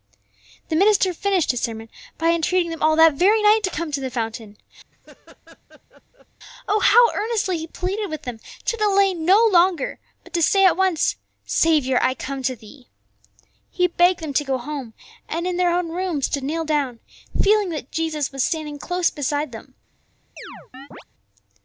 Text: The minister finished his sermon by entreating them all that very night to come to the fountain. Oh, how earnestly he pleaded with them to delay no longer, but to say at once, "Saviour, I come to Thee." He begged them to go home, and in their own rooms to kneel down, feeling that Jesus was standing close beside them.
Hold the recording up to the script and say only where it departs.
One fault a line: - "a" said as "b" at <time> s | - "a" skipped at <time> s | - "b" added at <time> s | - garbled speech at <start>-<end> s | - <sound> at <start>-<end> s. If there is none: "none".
- laugh at 4.9-6.3 s
- chirp at 20.4-21.0 s